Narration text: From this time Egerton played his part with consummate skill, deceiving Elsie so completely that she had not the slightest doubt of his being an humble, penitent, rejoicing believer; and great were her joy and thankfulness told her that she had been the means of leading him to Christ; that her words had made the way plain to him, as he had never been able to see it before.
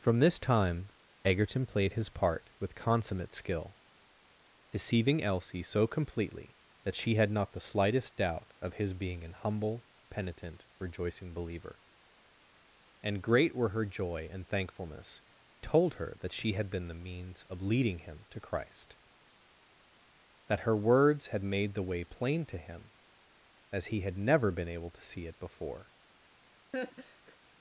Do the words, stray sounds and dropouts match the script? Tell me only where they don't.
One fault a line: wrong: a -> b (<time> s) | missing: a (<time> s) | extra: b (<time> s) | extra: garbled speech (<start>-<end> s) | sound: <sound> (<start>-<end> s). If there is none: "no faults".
sound: laugh (26.7-27.4 s)